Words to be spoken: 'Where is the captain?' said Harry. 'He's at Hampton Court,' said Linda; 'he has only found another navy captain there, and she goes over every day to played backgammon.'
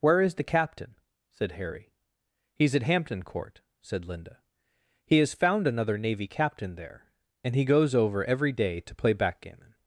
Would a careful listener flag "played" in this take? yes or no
yes